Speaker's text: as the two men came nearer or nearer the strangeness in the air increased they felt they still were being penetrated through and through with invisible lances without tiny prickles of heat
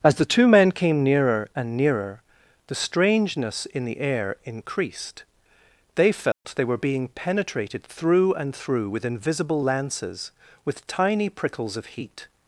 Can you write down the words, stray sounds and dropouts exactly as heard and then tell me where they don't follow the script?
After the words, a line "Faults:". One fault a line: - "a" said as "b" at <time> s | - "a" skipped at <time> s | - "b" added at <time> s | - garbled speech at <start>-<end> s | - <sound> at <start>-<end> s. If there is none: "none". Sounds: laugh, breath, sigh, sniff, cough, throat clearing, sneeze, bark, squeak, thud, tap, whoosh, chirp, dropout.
as the two men came nearer and nearer the strangeness in the air increased they felt they were being penetrated through and through with invisible lances with tiny prickles of heat
Faults:
- "or" said as "and" at 1.6 s
- dropout at 6.3-6.5 s
- "still" skipped at 6.6 s
- "without" said as "with" at 10.6 s